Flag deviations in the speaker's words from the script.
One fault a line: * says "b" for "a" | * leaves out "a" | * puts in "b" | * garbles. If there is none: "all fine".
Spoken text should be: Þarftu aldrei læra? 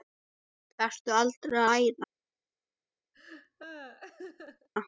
all fine